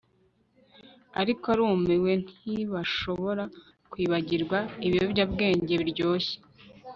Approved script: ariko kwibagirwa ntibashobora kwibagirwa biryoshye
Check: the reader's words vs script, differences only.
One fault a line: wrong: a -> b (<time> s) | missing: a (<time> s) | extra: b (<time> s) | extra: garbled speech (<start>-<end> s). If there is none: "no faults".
wrong: kwibagirwa -> arumiwe (1.5 s)
extra: ibiyobyabwenge (4.9 s)